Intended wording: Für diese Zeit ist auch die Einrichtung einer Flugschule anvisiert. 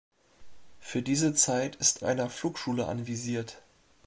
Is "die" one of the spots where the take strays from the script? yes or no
yes